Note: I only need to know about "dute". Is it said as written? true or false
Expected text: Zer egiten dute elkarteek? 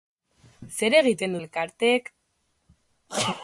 false